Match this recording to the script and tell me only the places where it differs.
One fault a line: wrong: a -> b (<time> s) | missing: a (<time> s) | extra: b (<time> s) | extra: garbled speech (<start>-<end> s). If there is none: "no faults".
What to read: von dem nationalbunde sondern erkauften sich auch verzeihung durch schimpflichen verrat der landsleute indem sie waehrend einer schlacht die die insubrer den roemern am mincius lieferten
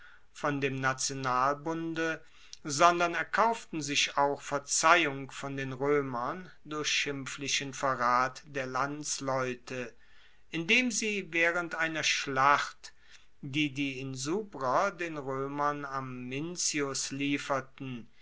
extra: von den roemern (5.3 s)